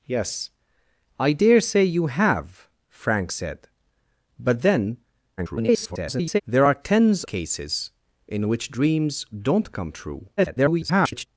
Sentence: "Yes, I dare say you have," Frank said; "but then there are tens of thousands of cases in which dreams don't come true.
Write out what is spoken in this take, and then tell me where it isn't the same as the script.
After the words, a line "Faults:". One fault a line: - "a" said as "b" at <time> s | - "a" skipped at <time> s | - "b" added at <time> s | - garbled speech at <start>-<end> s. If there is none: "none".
"Yes, I dare say you have," Frank said; "but then [garbled] there are tens cases in which dreams don't come true. [garbled]
Faults:
- garbled speech at 5.4-6.4 s
- "of thousands of" skipped at 7.2 s
- garbled speech at 10.4-11.3 s